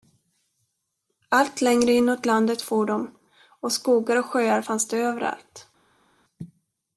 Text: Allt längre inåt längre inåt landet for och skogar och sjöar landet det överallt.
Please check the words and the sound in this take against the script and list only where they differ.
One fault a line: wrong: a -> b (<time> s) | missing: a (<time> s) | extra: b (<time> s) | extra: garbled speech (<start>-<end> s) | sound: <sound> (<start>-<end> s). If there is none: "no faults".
missing: längre inåt (2.3 s)
extra: de (2.9 s)
wrong: landet -> fanns (4.6 s)